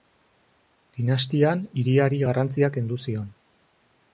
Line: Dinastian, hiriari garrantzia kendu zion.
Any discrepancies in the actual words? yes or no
no